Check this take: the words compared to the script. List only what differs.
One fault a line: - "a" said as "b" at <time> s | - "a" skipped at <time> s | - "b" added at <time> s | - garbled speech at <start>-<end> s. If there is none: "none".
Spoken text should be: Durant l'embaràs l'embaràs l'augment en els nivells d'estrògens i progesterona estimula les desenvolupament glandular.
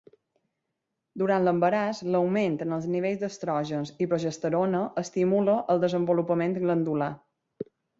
- "l'embaràs" skipped at 2.0 s
- "les" said as "el" at 5.8 s